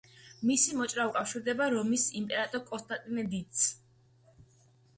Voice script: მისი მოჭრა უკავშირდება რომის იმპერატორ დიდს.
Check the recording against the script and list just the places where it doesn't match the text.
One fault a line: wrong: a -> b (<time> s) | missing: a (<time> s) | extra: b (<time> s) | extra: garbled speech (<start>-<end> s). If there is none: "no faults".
extra: კონსტანტინე (2.7 s)